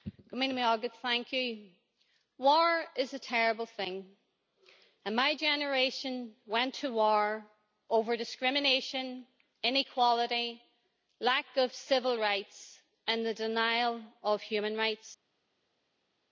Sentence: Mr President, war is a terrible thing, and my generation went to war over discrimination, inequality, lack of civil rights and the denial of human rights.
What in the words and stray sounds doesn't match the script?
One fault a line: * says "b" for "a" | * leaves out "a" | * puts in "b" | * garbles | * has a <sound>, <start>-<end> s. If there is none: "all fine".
all fine